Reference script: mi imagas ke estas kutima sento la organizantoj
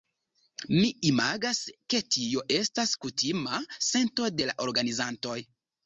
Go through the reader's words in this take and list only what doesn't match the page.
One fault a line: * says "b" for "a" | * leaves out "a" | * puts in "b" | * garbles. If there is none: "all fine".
* puts in "tio"
* puts in "de"